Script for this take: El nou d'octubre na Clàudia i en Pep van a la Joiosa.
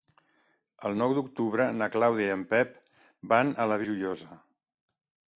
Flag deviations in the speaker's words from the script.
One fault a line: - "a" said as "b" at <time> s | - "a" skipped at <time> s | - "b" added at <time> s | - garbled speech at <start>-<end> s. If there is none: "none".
none